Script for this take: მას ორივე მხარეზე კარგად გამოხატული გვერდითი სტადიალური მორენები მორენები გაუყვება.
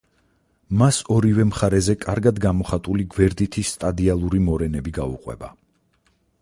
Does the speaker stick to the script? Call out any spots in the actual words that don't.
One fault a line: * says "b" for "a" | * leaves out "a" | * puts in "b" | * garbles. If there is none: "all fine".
* leaves out "მორენები"